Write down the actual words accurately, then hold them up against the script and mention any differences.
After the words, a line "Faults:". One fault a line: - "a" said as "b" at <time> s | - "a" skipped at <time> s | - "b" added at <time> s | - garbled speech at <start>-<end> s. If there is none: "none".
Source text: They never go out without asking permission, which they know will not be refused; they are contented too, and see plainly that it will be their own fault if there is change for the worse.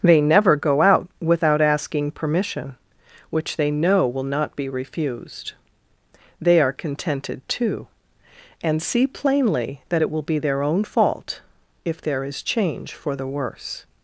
They never go out without asking permission, which they know will not be refused; they are contented too, and see plainly that it will be their own fault if there is change for the worse.
Faults:
none